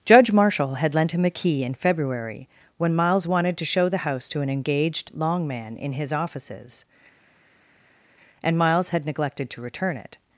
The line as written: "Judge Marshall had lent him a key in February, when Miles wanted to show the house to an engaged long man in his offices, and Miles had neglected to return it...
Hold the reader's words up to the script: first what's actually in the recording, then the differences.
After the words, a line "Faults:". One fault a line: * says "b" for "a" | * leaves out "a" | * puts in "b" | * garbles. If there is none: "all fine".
"Judge Marshall had lent him a key in February, when Miles wanted to show the house to an engaged long man in his offices, and Miles had neglected to return it...
Faults:
all fine